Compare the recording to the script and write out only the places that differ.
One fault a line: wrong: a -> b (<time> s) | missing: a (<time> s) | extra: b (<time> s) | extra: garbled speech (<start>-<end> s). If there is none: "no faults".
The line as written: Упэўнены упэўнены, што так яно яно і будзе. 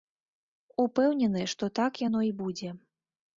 missing: упэўнены (1.4 s)
missing: яно (2.2 s)